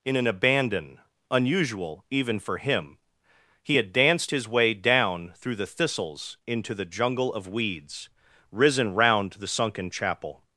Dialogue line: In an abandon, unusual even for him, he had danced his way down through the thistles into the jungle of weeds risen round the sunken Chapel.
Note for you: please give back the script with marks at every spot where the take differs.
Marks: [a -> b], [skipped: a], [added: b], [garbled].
In an abandon, unusual even for him, he had danced his way down through the thistles into the jungle of weeds risen round the sunken Chapel.